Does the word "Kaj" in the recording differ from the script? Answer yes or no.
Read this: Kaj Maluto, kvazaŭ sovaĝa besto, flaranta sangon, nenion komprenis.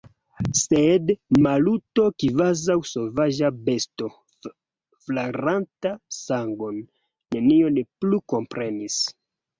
yes